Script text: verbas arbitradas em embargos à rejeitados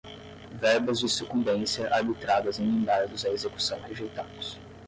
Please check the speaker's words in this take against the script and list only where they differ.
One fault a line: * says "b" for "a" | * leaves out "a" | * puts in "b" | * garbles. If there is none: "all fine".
* puts in "de sucumbência"
* puts in "execução"